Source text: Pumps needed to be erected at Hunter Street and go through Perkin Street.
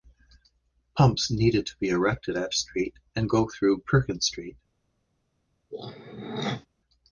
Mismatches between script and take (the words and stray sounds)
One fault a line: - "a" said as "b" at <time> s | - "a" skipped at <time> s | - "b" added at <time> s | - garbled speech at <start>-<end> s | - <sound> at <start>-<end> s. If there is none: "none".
- "Hunter" skipped at 2.5 s
- throat clearing at 5.7-6.7 s